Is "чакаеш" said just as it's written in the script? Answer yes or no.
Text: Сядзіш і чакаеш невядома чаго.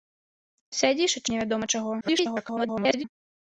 no